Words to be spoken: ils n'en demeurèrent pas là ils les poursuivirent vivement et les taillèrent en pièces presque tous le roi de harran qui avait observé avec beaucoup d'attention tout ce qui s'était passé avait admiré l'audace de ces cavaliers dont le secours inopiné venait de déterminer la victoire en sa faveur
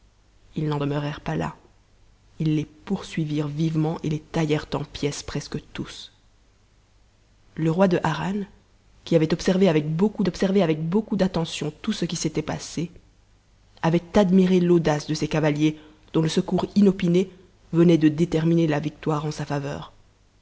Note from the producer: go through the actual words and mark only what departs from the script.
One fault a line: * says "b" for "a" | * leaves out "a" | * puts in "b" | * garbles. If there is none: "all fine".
* puts in "observé avec beaucoup"